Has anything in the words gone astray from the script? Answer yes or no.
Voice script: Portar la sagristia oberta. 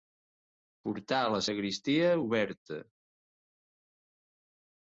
no